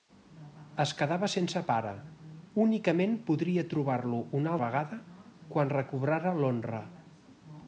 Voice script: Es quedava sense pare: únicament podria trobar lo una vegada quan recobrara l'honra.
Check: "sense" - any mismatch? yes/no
no